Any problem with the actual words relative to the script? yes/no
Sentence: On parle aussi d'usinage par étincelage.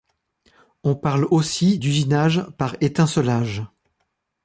no